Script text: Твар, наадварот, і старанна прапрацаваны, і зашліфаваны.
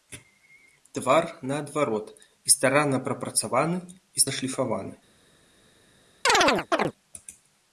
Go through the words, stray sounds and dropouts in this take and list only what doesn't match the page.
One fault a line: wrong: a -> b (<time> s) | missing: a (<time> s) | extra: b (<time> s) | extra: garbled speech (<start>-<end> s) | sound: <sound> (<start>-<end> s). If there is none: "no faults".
sound: chirp (6.3-6.9 s)